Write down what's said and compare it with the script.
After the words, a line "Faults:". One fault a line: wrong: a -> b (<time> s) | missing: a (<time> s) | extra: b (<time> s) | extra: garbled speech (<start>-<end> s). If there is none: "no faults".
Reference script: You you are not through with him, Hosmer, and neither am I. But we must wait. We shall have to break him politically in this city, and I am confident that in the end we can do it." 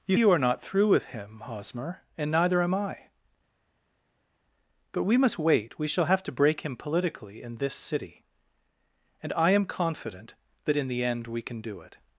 You you are not through with him, Hosmer, and neither am I. But we must wait. We shall have to break him politically in this city, and I am confident that in the end we can do it."
Faults:
no faults